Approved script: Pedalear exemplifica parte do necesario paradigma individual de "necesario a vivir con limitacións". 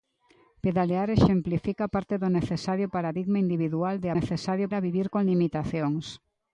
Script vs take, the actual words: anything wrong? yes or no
no